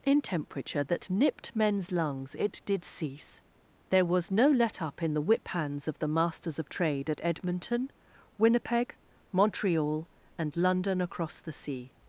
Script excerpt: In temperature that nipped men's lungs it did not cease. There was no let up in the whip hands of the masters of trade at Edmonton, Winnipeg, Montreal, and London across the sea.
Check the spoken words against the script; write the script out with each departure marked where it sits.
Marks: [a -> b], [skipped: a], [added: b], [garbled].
In temperature that nipped men's lungs it did [skipped: not] cease. There was no let up in the whip hands of the masters of trade at Edmonton, Winnipeg, Montreal, and London across the sea.